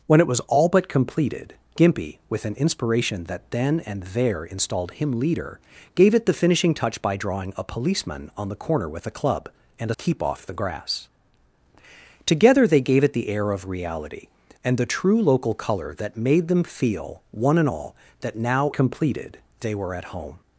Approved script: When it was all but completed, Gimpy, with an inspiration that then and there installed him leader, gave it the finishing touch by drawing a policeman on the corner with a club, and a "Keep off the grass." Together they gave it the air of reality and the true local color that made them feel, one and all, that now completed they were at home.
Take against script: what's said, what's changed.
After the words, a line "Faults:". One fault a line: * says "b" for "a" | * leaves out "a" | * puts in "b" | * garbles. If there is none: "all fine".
When it was all but completed, Gimpy, with an inspiration that then and there installed him leader, gave it the finishing touch by drawing a policeman on the corner with a club, and a "Keep off the grass." Together they gave it the air of reality and the true local color that made them feel, one and all, that now completed they were at home.
Faults:
all fine